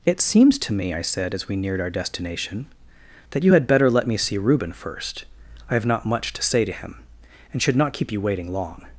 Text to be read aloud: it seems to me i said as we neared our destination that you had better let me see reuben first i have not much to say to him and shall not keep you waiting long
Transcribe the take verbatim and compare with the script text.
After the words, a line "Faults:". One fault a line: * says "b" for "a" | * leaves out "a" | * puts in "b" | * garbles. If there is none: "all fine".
it seems to me i said as we neared our destination that you had better let me see reuben first i have not much to say to him and should not keep you waiting long
Faults:
* says "should" for "shall"